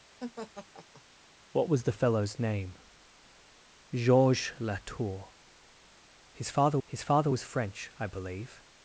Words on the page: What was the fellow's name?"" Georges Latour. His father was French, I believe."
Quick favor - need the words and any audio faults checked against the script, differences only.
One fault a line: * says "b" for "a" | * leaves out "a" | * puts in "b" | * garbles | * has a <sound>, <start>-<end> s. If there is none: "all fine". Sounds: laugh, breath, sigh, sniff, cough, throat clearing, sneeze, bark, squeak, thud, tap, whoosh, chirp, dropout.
* has a laugh, 0.2-1.0 s
* puts in "his father"